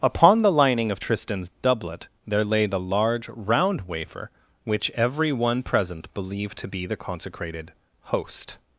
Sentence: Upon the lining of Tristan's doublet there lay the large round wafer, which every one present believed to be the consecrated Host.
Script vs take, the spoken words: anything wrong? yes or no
no